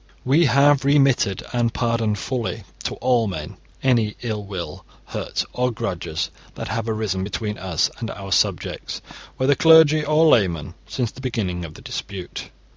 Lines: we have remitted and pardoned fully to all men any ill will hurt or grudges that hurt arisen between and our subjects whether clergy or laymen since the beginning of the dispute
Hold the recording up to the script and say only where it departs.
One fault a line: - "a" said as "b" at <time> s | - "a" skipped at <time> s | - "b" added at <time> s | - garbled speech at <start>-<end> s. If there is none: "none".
- "hurt" said as "have" at 6.7 s
- "us" added at 7.6 s